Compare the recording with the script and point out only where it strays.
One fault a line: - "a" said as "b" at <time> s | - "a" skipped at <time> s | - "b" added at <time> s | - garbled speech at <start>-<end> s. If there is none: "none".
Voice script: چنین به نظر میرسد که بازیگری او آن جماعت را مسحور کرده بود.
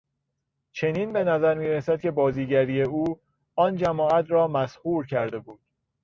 none